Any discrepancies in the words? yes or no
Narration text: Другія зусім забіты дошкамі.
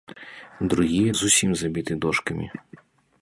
no